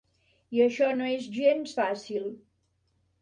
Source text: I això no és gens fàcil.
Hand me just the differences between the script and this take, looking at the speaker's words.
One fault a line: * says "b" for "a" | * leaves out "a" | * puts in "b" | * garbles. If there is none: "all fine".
all fine